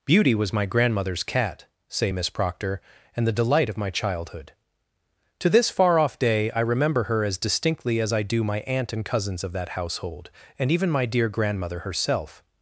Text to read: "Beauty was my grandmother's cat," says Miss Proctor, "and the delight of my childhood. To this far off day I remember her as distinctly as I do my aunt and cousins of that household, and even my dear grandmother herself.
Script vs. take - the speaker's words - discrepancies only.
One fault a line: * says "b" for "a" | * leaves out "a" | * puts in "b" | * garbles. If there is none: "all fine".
* says "say" for "says"